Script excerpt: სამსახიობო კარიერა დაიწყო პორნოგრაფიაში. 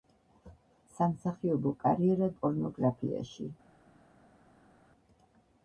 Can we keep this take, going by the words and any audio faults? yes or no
no